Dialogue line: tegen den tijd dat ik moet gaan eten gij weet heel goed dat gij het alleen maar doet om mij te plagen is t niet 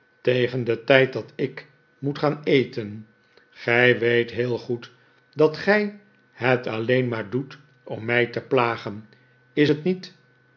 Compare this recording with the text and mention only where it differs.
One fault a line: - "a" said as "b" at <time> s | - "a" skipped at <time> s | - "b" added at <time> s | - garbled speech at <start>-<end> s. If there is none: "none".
none